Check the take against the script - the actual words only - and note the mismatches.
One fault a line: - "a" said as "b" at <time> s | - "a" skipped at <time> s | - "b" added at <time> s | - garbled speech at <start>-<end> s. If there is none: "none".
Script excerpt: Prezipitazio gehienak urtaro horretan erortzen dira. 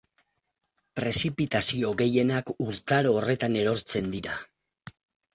none